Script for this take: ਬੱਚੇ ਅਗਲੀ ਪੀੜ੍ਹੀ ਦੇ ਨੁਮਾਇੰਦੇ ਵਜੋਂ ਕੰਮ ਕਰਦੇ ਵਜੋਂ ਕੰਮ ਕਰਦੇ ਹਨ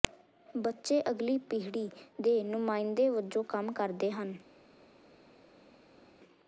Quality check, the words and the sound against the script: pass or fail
fail